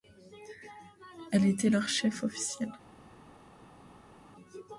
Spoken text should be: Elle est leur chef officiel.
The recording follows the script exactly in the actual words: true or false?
false